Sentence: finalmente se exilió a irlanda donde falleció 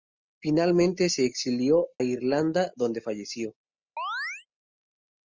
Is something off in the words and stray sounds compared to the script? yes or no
yes